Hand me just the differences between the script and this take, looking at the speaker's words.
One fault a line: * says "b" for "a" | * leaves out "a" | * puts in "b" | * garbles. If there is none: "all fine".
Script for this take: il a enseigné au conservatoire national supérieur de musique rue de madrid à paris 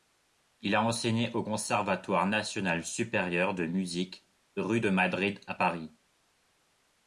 all fine